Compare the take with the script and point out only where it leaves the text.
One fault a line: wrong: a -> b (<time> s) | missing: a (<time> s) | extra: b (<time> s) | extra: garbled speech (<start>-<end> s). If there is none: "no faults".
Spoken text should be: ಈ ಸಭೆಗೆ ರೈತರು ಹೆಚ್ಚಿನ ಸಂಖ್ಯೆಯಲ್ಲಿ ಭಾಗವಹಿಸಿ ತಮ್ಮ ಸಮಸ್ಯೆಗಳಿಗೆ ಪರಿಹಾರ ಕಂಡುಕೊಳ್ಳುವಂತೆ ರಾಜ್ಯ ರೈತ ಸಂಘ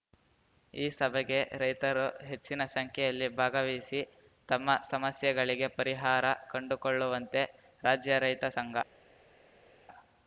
no faults